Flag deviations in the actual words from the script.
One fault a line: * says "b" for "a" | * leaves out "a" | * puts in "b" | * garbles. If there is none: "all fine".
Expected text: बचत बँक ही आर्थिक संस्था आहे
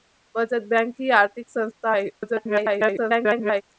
* garbles